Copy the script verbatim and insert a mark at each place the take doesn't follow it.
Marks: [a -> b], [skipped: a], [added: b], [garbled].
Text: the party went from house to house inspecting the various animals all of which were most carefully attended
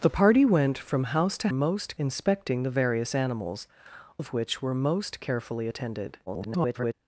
the party went from house to [house -> most] inspecting the various animals [skipped: all] of which were most carefully attended [garbled]